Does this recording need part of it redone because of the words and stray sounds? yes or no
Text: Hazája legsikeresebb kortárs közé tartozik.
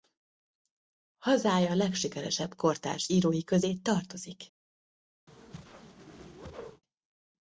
yes